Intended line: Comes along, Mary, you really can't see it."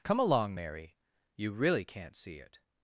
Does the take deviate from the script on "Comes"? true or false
true